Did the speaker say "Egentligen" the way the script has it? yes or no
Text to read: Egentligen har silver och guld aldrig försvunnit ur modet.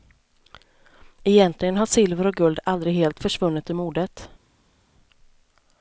yes